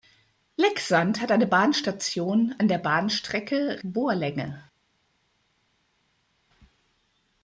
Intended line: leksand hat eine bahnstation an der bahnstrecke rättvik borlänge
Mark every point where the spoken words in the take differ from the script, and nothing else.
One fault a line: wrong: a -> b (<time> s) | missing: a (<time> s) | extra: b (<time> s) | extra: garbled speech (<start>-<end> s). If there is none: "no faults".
missing: rättvik (3.8 s)